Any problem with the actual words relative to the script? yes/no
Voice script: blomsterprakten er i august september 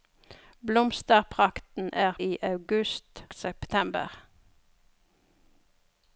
no